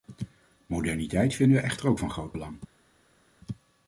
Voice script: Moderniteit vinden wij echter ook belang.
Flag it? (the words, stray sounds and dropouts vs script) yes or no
yes